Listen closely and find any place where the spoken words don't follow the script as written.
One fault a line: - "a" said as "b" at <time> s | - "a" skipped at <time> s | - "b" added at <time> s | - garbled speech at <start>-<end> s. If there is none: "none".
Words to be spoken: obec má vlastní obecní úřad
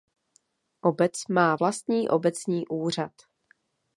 none